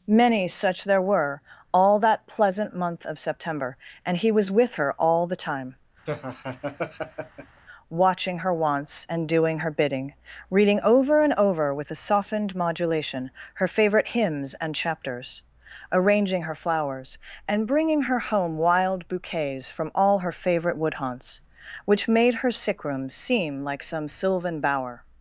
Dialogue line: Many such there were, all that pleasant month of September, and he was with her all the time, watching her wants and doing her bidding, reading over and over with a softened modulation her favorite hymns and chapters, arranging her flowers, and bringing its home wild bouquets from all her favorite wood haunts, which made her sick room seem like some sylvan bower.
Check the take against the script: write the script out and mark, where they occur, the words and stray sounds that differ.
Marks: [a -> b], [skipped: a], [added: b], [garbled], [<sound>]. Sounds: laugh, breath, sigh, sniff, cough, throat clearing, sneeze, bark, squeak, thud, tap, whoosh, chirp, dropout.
Many such there were, all that pleasant month of September, and he was with her all the time, [laugh] watching her wants and doing her bidding, reading over and over with a softened modulation her favorite hymns and chapters, arranging her flowers, and bringing [its -> her] home wild bouquets from all her favorite wood haunts, which made her sick room seem like some sylvan bower.